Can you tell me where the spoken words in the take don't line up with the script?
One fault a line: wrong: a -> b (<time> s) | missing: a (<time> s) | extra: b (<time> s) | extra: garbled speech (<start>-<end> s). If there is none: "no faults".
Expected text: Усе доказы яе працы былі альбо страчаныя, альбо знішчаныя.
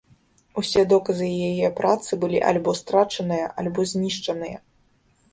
no faults